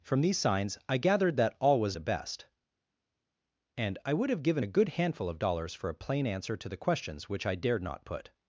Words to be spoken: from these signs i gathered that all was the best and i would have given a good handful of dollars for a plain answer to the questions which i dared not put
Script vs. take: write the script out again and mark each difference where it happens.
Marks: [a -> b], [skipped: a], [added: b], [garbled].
from these signs i gathered that all was the best and i would have given a good handful of dollars for a plain answer to the questions which i dared not put